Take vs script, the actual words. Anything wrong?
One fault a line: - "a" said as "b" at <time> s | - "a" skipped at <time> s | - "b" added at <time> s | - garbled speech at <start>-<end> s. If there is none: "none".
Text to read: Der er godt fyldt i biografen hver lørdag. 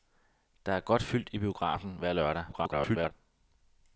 - garbled speech at 2.5-3.1 s